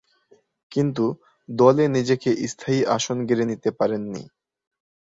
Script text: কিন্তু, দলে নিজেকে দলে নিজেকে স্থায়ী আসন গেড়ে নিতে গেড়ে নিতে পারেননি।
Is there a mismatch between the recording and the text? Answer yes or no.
yes